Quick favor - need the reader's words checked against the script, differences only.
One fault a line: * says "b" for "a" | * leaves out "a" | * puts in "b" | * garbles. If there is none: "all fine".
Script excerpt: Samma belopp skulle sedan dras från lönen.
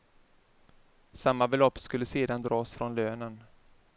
all fine